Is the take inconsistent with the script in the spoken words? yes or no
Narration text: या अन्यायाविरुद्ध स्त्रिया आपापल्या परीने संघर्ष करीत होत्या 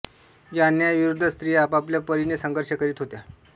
no